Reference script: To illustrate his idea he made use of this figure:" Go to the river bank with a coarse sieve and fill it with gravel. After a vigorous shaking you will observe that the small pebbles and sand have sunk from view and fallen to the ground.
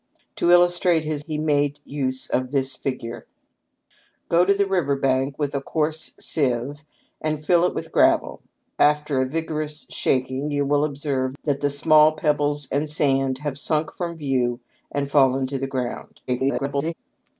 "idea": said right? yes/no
no